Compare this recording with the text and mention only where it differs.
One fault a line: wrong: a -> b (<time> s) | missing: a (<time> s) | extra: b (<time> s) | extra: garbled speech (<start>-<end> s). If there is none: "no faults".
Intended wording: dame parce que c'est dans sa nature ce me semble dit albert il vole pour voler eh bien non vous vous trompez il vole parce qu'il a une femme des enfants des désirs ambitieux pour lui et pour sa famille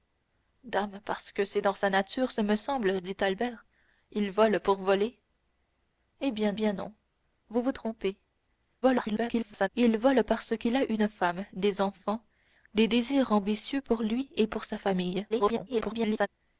extra: bien (6.5 s)
extra: garbled speech (8.8-9.7 s)
extra: garbled speech (15.3-16.3 s)